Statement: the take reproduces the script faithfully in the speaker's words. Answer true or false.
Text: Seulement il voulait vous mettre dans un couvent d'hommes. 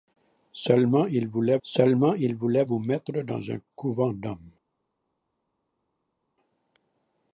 false